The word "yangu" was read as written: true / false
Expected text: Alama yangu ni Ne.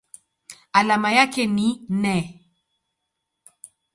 false